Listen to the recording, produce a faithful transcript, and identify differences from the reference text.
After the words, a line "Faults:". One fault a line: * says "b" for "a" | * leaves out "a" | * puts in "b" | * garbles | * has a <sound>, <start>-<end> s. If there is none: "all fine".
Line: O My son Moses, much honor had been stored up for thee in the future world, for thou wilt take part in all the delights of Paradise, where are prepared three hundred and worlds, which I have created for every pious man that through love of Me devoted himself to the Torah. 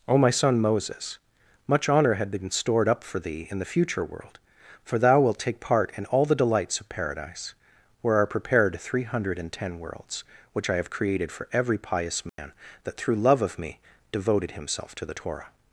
O My son Moses, much honor had been stored up for thee in the future world, for thou wilt take part in all the delights of Paradise, where are prepared three hundred and ten worlds, which I have created for every pious man that through love of Me devoted himself to the Torah.
Faults:
* puts in "ten"
* has a dropout, 12.3-12.4 s